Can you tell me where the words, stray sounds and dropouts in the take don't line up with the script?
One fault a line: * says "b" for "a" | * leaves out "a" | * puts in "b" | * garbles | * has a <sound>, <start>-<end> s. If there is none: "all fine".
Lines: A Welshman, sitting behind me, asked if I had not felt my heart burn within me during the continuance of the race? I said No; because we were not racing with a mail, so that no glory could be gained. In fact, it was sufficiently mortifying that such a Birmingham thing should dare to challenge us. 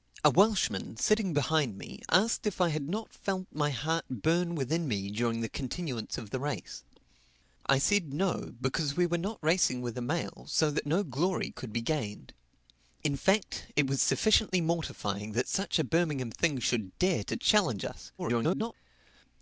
* garbles